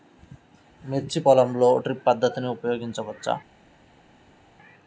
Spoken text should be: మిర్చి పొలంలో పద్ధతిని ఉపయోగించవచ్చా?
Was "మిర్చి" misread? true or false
false